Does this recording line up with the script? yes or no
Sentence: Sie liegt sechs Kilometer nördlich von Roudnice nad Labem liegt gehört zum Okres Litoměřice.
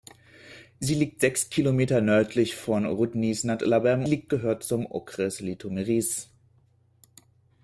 yes